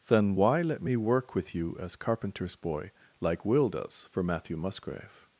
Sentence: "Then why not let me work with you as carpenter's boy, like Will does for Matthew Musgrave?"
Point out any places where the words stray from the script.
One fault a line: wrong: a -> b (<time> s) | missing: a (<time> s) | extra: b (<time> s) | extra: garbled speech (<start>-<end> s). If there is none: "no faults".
missing: not (0.6 s)